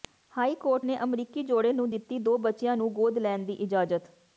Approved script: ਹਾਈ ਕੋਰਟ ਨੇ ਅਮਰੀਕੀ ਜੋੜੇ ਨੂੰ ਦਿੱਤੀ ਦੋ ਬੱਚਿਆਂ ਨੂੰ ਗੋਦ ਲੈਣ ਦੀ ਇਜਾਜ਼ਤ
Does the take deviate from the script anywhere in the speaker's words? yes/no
no